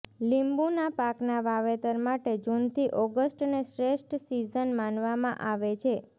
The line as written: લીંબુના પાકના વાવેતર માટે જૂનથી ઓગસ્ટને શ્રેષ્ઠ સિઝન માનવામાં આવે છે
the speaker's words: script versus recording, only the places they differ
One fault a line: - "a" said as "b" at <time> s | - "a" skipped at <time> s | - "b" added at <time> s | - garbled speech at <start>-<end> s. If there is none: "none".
none